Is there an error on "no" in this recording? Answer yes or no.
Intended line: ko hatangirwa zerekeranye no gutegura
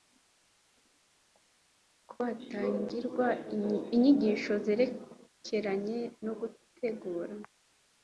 no